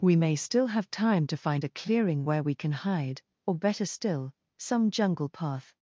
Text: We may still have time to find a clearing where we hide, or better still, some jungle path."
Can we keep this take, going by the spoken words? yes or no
no